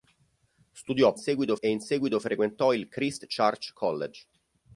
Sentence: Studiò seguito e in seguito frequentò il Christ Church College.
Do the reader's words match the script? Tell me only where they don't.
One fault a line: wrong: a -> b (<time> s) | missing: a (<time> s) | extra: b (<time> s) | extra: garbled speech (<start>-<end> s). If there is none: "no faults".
no faults